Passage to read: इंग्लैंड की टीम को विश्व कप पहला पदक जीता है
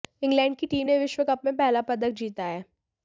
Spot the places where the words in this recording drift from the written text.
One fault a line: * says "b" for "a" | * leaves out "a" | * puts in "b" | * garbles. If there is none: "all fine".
* says "ने" for "को"
* puts in "में"